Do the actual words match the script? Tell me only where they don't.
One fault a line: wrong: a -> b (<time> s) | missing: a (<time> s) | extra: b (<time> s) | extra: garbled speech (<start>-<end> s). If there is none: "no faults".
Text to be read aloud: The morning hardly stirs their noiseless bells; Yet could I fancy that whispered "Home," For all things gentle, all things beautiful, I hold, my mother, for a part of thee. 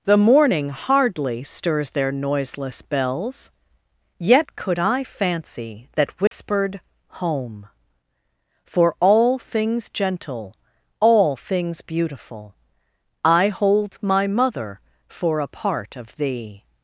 no faults